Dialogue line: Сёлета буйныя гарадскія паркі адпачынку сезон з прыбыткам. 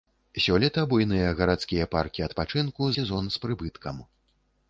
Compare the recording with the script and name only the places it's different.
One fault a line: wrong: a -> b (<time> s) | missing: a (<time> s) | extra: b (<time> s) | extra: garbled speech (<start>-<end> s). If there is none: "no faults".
no faults